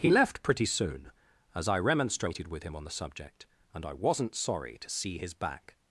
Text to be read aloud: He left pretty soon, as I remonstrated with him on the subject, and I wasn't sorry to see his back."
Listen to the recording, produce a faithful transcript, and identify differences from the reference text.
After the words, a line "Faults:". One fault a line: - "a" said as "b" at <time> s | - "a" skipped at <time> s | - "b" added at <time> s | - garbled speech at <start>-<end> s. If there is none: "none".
He left pretty soon, as I remonstrated with him on the subject, and I wasn't sorry to see his back."
Faults:
none